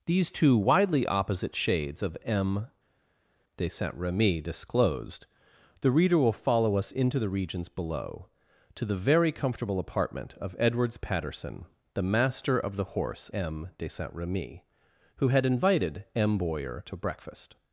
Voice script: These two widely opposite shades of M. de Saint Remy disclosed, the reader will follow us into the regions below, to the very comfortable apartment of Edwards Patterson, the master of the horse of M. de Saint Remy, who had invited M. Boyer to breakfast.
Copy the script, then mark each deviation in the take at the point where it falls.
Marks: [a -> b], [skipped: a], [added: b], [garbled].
These two widely opposite shades of M. de Saint Remy disclosed, the reader will follow us into the regions below, to the very comfortable apartment of Edwards Patterson, the master of the horse [skipped: of] M. de Saint Remy, who had invited M. Boyer to breakfast.